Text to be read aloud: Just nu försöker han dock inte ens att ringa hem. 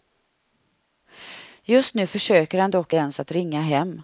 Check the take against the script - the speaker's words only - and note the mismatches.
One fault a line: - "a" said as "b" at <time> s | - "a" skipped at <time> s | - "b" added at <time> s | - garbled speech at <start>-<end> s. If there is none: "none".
- "inte" skipped at 3.0 s